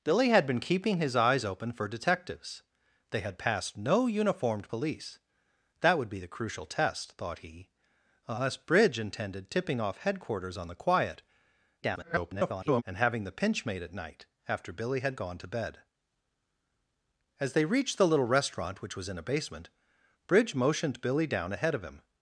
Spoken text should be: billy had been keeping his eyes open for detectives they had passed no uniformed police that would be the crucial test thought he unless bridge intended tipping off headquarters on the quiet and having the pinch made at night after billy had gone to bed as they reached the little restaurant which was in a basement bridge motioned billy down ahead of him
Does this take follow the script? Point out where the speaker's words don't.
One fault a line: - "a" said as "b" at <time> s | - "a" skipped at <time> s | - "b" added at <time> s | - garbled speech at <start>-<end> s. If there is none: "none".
- garbled speech at 11.8-12.8 s